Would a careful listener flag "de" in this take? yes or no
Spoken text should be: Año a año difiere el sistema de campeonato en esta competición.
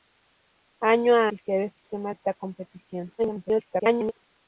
yes